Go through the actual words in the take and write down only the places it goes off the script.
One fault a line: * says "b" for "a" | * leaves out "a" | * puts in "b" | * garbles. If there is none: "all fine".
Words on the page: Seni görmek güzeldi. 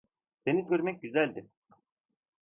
all fine